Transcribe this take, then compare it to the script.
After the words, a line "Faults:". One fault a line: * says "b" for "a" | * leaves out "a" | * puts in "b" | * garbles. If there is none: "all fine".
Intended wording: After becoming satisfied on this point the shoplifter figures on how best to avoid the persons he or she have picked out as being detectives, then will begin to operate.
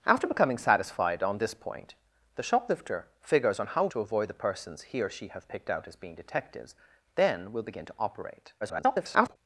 After becoming satisfied on this point the shoplifter figures on how to avoid the persons he or she have picked out as being detectives, then will begin to operate. [garbled]
Faults:
* leaves out "best"
* garbles